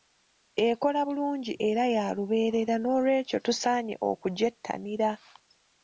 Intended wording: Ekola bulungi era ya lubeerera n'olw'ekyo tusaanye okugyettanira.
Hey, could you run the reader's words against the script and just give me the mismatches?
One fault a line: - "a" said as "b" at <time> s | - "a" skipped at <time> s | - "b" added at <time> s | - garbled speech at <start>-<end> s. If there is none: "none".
none